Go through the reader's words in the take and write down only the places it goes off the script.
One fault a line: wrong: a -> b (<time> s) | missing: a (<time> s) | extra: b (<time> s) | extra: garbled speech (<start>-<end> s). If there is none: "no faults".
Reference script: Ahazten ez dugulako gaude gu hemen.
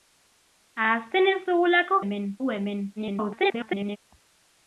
wrong: gaude -> hemen (2.0 s)
extra: garbled speech (3.0-4.0 s)